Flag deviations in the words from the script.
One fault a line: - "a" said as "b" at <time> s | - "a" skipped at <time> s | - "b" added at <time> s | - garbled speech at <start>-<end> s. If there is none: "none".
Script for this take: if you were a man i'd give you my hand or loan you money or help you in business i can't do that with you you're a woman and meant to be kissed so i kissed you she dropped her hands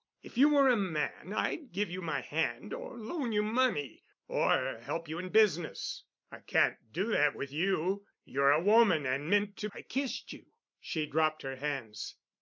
- "be kissed so" skipped at 9.7 s